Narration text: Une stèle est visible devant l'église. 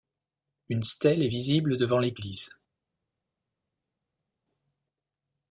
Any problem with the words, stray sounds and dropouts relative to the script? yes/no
no